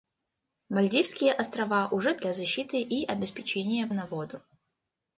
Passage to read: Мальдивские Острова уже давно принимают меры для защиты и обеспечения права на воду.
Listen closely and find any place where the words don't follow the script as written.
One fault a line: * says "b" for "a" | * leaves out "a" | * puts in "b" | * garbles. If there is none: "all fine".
* leaves out "давно принимают меры"
* leaves out "права"